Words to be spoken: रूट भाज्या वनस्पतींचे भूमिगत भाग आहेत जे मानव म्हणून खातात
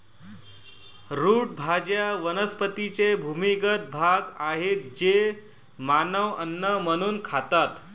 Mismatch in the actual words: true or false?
true